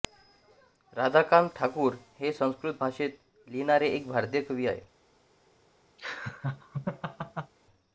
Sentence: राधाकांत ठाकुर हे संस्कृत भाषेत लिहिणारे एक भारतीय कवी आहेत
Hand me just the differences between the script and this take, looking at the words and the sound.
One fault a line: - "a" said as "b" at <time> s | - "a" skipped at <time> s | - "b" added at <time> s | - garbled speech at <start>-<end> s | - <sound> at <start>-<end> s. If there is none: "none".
- laugh at 6.0-7.5 s